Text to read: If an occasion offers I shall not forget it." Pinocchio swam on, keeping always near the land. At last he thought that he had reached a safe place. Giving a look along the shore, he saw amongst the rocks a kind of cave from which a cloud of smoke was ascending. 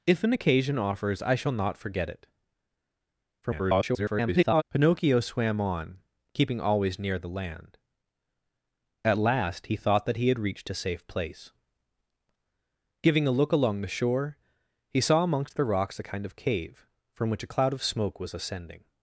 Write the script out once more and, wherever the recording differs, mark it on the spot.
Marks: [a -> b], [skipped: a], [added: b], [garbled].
If an occasion offers I shall not forget it." [garbled] Pinocchio swam on, keeping always near the land. At last he thought that he had reached a safe place. Giving a look along the shore, he saw amongst the rocks a kind of cave from which a cloud of smoke was ascending.